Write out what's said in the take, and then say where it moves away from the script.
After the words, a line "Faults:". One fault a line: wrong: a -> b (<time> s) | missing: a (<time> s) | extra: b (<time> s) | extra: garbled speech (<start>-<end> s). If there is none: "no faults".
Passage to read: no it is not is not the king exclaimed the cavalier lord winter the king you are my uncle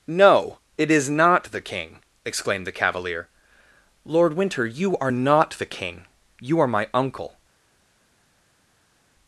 no it is not the king exclaimed the cavalier lord winter you are not the king you are my uncle
Faults:
missing: is not (1.5 s)
extra: you are not (4.7 s)